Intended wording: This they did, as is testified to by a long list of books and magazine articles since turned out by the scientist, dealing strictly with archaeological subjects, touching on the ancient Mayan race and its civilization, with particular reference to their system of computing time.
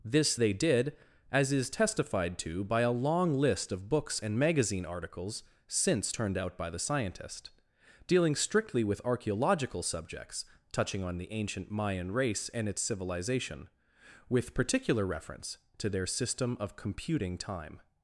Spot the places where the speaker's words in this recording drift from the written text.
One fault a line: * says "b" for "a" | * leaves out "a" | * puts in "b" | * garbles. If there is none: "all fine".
all fine